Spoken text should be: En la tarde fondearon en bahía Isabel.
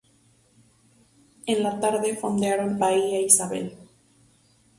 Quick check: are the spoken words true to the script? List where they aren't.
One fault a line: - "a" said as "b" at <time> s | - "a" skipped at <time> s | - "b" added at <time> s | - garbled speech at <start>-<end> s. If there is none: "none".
- "en" skipped at 2.8 s